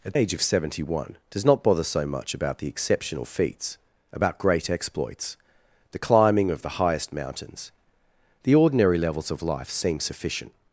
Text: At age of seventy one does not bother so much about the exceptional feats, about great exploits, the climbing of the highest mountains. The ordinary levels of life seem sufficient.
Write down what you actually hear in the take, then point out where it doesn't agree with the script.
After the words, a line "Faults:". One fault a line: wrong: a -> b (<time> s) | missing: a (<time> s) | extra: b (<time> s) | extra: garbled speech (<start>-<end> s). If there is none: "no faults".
At age of seventy one does not bother so much about the exceptional feats, about great exploits, the climbing of the highest mountains. The ordinary levels of life seem sufficient.
Faults:
no faults